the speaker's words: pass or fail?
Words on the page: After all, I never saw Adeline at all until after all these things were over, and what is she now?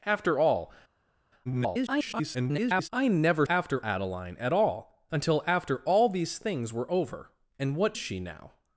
fail